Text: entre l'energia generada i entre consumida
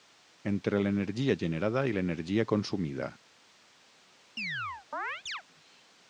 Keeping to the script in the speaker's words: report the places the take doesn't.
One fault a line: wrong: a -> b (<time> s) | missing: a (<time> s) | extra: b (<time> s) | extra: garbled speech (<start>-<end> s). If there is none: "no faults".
wrong: entre -> l'energia (2.0 s)